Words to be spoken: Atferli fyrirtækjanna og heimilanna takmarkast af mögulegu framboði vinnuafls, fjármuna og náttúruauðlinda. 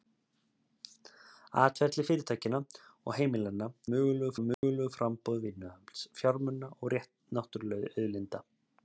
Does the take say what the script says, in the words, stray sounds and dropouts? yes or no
no